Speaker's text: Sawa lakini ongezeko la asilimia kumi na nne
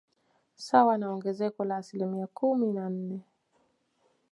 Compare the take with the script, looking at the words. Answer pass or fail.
fail